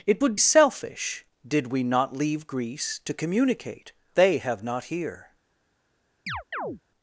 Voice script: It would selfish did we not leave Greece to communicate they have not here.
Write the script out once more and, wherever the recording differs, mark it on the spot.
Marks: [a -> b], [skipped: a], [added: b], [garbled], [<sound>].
It would selfish did we not leave Greece to communicate they have not here. [chirp]